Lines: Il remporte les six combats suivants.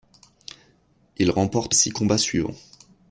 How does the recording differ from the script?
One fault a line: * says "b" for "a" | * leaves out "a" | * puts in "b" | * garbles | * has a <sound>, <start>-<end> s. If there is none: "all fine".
* leaves out "les"